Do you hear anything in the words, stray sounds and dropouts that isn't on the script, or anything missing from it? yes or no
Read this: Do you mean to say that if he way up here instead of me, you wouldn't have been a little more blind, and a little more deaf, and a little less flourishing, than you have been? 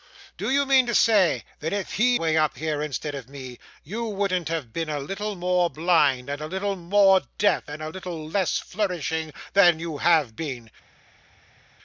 no